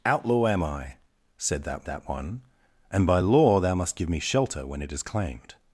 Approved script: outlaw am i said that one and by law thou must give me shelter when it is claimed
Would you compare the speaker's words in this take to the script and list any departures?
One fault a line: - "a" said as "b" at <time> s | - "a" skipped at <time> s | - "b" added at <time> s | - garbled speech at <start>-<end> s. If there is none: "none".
- "that" added at 1.8 s